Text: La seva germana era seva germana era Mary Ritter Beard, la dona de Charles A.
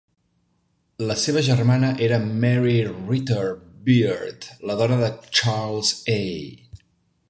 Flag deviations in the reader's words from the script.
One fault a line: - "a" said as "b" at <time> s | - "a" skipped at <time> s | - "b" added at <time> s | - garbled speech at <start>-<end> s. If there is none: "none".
- "seva germana era" skipped at 2.2 s